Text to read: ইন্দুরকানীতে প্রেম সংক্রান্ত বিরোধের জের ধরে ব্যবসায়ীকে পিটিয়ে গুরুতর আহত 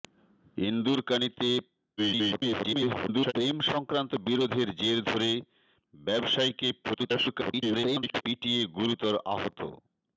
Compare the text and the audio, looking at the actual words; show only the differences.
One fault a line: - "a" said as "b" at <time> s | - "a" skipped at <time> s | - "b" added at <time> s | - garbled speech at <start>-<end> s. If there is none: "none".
- garbled speech at 2.0-3.3 s
- garbled speech at 6.8-8.2 s